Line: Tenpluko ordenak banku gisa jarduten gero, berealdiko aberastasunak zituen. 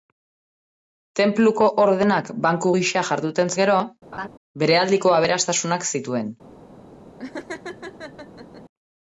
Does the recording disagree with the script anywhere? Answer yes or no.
no